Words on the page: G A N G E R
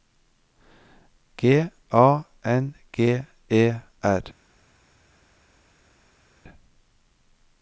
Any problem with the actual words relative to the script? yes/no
no